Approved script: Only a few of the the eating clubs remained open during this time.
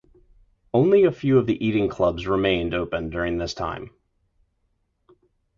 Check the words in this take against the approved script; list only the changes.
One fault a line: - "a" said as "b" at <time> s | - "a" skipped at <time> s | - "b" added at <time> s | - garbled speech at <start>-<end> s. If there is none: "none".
- "the" skipped at 1.7 s